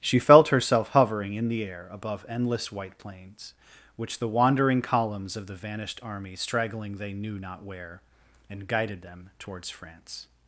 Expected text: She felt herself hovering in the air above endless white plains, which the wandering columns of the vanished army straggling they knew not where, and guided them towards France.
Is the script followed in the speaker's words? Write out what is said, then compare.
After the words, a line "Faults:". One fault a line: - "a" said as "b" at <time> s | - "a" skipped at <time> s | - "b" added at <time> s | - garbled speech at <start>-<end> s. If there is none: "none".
She felt herself hovering in the air above endless white plains, which the wandering columns of the vanished army straggling they knew not where, and guided them towards France.
Faults:
none